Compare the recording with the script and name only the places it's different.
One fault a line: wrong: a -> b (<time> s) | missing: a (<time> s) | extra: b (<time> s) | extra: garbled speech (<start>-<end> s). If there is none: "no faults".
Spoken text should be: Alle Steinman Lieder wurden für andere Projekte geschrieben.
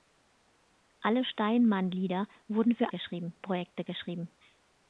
wrong: andere -> geschrieben (2.9 s)